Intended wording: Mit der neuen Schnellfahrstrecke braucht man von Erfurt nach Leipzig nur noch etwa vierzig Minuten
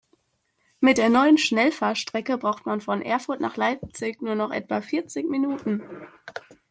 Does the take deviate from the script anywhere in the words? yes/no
no